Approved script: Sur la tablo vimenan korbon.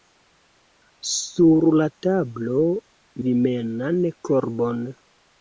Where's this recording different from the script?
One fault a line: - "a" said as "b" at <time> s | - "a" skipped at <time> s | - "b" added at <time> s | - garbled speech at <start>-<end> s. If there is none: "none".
none